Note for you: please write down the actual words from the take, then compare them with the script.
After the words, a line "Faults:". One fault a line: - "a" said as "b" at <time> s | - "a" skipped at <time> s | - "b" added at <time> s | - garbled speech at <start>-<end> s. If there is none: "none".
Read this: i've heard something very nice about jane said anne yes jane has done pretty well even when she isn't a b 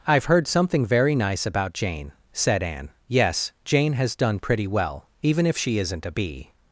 i've heard something very nice about jane said anne yes jane has done pretty well even if she isn't a b
Faults:
- "when" said as "if" at 5.5 s